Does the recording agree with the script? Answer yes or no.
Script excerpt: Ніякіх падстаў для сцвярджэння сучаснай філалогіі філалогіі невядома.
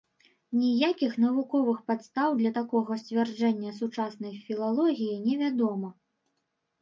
no